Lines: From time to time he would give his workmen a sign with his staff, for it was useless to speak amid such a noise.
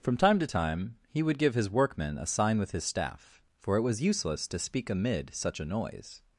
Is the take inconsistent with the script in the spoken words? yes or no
no